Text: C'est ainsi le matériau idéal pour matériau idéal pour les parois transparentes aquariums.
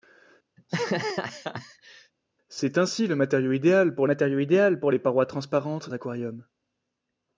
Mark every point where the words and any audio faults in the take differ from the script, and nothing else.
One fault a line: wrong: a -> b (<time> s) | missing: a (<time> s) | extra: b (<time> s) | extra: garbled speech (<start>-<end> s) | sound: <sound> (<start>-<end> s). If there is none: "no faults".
sound: laugh (0.6-2.1 s)